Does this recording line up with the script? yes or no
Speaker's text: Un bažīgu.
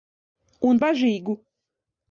yes